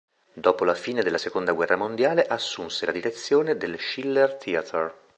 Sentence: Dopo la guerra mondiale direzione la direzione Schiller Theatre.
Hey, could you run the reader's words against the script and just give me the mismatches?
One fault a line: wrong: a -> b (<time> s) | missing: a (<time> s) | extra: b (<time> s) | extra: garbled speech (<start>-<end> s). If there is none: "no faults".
extra: fine della seconda (0.7 s)
wrong: direzione -> assunse (2.2 s)
extra: del (3.6 s)